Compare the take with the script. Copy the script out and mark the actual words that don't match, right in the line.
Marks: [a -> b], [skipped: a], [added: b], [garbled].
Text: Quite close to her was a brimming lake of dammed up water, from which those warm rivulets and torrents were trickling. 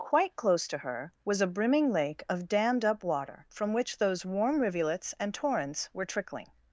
Quite close to her was a brimming lake of dammed up water, from which those warm rivulets and torrents were trickling.